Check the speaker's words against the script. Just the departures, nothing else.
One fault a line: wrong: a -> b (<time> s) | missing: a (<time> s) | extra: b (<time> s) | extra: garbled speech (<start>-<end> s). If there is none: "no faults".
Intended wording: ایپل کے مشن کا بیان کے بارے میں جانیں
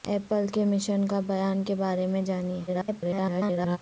extra: garbled speech (2.7-3.8 s)